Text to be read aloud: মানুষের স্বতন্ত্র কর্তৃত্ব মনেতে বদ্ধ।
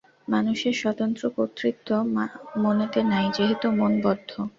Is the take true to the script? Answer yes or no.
no